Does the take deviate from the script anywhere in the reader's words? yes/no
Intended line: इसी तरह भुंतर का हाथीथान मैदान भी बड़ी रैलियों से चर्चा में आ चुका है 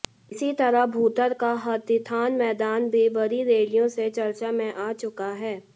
no